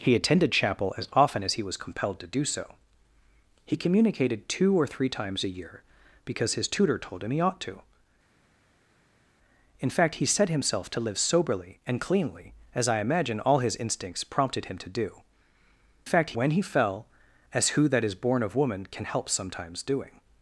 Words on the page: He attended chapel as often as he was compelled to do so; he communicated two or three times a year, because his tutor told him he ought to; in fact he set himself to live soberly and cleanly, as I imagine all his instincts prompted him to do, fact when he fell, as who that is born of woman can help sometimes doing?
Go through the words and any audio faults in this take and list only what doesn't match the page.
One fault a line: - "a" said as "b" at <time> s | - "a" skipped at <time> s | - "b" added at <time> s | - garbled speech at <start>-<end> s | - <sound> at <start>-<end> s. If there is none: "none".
none